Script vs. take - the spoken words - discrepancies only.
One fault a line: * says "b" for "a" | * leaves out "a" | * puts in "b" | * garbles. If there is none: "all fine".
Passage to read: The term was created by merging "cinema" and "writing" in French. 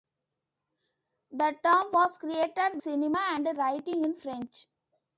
* leaves out "by merging"